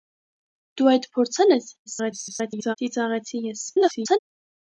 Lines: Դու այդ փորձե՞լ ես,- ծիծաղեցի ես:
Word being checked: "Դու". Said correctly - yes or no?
yes